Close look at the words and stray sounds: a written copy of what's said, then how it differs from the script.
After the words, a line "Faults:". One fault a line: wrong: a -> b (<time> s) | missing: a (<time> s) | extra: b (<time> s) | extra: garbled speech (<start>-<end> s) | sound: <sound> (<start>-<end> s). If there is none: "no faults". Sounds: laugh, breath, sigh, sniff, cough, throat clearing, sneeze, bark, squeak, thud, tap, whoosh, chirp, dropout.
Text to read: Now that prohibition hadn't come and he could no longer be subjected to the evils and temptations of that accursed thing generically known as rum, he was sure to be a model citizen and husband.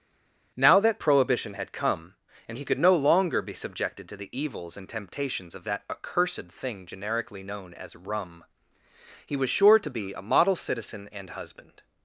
Now that prohibition had come and he could no longer be subjected to the evils and temptations of that accursed thing generically known as rum, he was sure to be a model citizen and husband.
Faults:
wrong: hadn't -> had (1.5 s)